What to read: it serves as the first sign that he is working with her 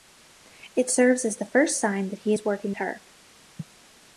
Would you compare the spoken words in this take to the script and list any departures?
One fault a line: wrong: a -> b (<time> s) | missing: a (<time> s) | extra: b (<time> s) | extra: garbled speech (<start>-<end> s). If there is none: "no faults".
missing: with (2.7 s)